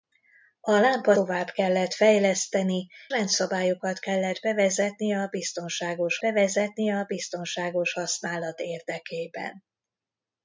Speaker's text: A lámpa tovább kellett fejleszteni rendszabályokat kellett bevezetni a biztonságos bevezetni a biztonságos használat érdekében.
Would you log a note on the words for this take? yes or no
no